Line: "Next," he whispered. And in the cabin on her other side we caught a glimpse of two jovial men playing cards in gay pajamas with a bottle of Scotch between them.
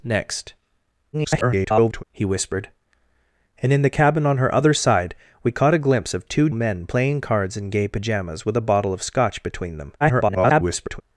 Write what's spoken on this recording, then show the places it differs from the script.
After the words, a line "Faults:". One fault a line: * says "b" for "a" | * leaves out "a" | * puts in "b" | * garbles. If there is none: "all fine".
"Next," [garbled] he whispered. And in the cabin on her other side we caught a glimpse of two men playing cards in gay pajamas with a bottle of Scotch between them. [garbled]
Faults:
* garbles
* leaves out "jovial"
* garbles